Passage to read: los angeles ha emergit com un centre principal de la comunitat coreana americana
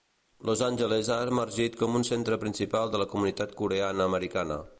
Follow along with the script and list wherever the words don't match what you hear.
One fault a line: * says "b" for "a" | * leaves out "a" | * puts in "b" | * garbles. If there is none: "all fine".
all fine